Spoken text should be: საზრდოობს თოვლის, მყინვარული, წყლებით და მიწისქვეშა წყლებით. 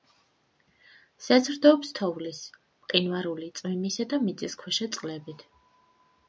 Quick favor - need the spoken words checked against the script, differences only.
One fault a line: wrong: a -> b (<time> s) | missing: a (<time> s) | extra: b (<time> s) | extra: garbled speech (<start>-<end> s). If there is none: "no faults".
wrong: წყლებით -> წვიმისა (3.6 s)